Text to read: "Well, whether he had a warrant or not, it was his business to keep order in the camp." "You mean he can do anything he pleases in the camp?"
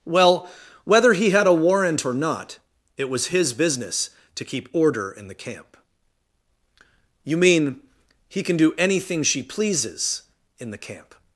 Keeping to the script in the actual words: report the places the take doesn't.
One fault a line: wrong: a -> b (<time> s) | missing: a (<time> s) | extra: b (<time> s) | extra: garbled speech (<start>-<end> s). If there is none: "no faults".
wrong: he -> she (9.2 s)